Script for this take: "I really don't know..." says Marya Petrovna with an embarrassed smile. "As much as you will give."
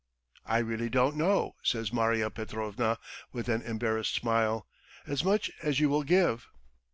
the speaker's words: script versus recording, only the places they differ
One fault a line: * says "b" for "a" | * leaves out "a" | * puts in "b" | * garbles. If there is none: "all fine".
all fine